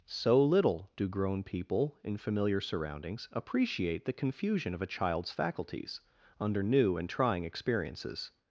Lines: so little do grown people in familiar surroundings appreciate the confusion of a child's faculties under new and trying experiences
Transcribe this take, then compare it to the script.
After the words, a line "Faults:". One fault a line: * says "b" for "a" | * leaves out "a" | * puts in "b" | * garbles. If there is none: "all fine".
so little do grown people in familiar surroundings appreciate the confusion of a child's faculties under new and trying experiences
Faults:
all fine